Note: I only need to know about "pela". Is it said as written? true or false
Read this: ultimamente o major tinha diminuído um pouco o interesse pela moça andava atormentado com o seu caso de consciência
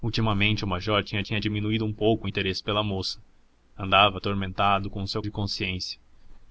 true